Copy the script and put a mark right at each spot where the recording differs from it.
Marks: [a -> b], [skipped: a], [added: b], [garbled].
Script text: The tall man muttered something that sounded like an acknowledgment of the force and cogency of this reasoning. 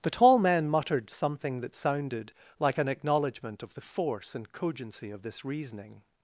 The tall man muttered something that sounded like an acknowledgment of the force and cogency of this reasoning.